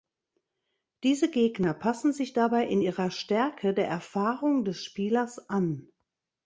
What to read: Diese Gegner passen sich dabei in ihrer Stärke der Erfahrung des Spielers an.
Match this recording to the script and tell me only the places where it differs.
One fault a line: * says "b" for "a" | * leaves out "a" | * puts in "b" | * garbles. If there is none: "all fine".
all fine